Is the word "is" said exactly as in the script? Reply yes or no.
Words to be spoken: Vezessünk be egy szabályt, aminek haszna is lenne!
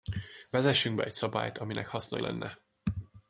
no